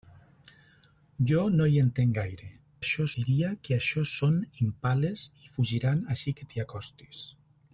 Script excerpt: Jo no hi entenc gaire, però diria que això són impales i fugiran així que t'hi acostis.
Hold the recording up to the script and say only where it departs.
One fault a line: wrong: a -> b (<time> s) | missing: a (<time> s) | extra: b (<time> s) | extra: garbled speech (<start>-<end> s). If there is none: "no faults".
wrong: però -> això (2.8 s)